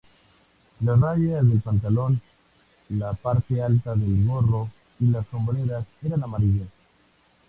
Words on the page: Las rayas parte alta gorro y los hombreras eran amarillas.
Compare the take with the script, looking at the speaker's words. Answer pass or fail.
fail